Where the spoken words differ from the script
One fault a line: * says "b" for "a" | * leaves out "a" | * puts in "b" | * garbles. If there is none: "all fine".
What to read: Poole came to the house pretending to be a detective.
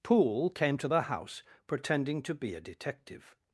all fine